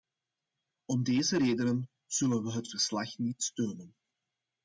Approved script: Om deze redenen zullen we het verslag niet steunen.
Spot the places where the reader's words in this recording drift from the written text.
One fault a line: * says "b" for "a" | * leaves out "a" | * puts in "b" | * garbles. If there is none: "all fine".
all fine